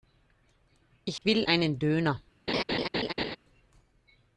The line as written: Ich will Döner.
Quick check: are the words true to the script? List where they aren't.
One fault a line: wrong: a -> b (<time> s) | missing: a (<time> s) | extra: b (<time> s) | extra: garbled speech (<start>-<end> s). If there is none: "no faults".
extra: einen (1.4 s)